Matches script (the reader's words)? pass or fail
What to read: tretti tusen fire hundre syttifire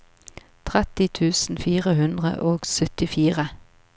fail